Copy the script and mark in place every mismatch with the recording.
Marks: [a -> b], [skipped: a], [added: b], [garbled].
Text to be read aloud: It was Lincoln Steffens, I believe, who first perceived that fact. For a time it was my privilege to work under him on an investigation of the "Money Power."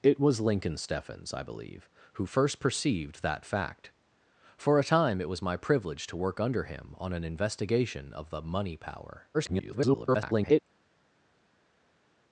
It was Lincoln Steffens, I believe, who first perceived that fact. For a time it was my privilege to work under him on an investigation of the "Money Power." [garbled]